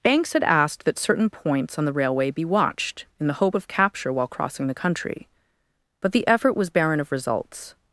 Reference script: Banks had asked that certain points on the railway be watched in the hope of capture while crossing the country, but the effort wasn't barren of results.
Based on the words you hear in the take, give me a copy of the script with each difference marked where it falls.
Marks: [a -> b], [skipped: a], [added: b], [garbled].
Banks had asked that certain points on the railway be watched in the hope of capture while crossing the country, but the effort [wasn't -> was] barren of results.